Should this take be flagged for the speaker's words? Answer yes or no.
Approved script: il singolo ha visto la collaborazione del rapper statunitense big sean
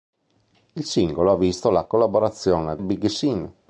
yes